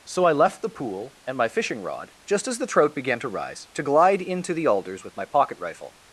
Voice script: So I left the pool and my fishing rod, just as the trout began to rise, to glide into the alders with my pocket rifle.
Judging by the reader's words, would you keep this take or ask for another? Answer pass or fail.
pass